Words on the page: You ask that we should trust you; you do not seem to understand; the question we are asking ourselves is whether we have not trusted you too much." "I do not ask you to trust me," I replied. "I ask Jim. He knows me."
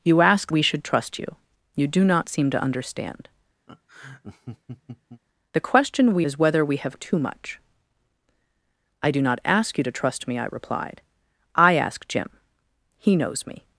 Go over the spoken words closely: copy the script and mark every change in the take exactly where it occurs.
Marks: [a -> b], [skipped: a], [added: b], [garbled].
You ask [skipped: that] we should trust you; you do not seem to understand; the question we [skipped: are asking ourselves] is whether we have [skipped: not trusted you] too much." "I do not ask you to trust me," I replied. "I ask Jim. He knows me."